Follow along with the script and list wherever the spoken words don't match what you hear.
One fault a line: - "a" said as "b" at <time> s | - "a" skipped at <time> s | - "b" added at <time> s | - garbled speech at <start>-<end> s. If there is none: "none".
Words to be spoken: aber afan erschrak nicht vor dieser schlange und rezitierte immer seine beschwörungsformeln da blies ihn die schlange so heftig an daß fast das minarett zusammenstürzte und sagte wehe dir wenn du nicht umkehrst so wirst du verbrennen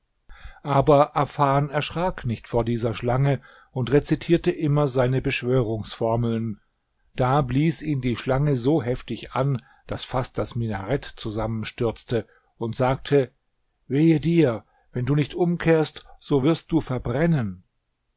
none